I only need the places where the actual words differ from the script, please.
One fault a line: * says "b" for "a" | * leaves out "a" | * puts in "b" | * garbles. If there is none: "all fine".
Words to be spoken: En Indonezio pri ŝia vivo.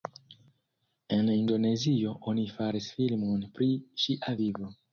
* puts in "oni faris filmon"